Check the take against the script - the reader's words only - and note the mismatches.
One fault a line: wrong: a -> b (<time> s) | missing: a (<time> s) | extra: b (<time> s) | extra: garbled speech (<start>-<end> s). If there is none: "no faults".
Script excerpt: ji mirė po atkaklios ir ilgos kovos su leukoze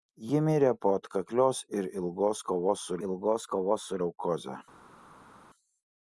extra: ilgos kovos su (3.1 s)